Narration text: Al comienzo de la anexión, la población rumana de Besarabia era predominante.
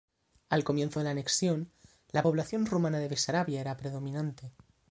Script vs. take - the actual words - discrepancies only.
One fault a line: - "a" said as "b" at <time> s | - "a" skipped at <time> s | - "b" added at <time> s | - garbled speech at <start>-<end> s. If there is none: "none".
none